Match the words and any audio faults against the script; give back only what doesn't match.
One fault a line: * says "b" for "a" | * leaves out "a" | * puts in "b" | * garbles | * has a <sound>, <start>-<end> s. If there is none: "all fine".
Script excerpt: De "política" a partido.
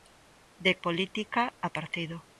all fine